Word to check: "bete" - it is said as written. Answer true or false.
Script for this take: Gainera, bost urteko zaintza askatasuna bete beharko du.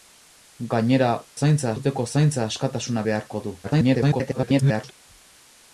false